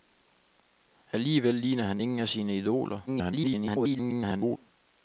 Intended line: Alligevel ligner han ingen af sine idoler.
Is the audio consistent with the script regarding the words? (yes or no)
no